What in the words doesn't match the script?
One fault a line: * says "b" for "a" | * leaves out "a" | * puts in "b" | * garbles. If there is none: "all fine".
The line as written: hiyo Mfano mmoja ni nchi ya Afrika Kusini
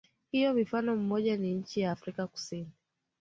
all fine